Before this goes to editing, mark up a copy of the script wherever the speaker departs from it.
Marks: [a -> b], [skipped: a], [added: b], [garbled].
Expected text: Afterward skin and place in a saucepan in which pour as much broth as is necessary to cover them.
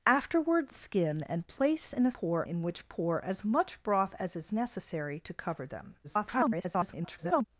Afterward skin and place in a [saucepan -> pour] in which pour as much broth as is necessary to cover them. [garbled]